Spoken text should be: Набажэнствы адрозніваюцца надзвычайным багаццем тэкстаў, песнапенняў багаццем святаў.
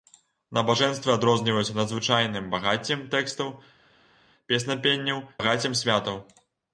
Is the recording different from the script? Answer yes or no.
no